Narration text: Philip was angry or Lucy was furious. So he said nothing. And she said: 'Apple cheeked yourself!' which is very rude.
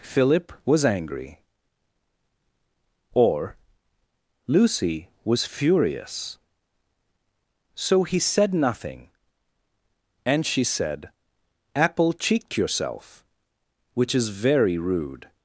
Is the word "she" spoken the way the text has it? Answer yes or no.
yes